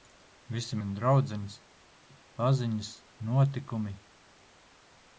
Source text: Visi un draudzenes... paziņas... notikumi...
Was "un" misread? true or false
false